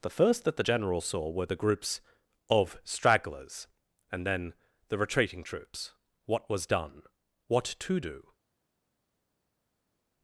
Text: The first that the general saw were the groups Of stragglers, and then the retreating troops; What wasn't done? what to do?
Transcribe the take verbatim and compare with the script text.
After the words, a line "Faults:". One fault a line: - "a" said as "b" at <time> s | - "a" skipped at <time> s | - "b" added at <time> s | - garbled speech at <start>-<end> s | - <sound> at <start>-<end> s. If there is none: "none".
The first that the general saw were the groups Of stragglers, and then the retreating troops; What was done? what to do?
Faults:
- "wasn't" said as "was" at 6.5 s